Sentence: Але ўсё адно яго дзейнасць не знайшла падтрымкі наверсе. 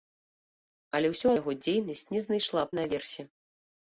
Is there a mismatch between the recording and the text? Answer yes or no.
yes